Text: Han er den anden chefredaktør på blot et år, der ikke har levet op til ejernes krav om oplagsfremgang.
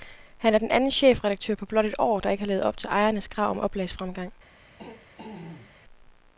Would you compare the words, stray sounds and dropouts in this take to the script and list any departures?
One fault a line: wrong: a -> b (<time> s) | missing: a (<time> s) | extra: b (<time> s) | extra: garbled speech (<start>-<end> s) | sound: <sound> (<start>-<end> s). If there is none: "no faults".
sound: throat clearing (4.8-5.7 s)